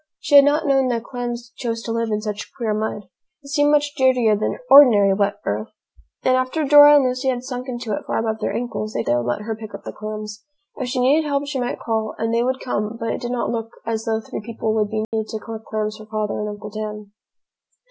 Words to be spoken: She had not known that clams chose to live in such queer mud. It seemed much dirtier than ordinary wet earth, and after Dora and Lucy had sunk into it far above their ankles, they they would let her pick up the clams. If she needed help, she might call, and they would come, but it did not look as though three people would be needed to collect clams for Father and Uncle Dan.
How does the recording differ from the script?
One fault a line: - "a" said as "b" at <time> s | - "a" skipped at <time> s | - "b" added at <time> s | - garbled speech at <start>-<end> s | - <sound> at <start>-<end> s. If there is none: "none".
- dropout at 15.0-15.1 s